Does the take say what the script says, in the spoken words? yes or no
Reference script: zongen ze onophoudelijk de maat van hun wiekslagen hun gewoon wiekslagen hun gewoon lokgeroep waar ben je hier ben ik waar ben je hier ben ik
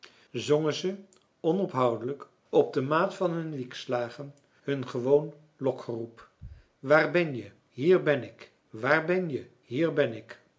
no